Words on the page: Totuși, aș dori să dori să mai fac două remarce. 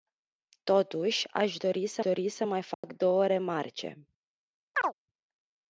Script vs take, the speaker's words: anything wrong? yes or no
no